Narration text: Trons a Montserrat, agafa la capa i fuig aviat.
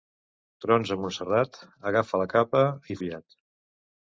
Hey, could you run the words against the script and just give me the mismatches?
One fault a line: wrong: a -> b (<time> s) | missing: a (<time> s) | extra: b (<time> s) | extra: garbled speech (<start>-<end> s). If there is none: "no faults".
missing: fuig (3.0 s)